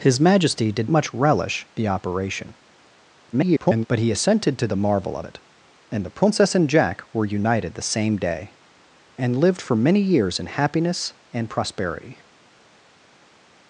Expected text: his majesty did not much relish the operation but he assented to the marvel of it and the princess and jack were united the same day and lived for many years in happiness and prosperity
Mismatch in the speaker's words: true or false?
true